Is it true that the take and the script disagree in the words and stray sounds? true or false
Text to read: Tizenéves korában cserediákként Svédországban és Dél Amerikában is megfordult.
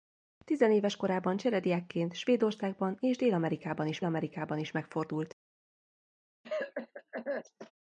true